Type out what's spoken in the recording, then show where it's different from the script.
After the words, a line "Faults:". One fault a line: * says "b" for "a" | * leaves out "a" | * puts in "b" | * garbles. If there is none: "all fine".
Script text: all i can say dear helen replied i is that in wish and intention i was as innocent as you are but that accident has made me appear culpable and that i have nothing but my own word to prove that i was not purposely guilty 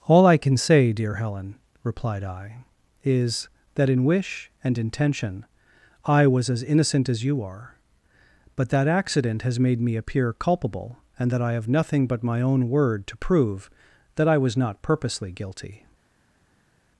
all i can say dear helen replied i is that in wish and intention i was as innocent as you are but that accident has made me appear culpable and that i have nothing but my own word to prove that i was not purposely guilty
Faults:
all fine